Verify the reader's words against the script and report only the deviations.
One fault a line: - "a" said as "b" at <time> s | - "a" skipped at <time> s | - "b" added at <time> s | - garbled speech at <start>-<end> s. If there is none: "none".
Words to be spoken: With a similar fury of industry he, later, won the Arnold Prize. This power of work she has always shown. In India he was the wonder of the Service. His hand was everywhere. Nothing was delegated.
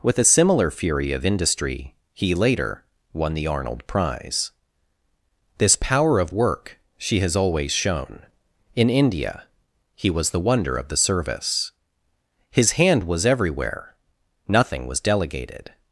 none